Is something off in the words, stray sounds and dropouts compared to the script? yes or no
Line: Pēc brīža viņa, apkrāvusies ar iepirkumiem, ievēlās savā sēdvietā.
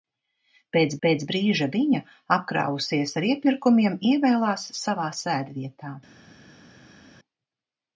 yes